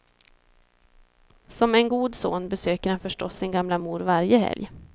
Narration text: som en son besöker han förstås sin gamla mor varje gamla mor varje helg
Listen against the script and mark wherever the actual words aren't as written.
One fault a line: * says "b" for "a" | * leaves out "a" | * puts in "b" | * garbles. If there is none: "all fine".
* puts in "god"
* leaves out "gamla mor varje"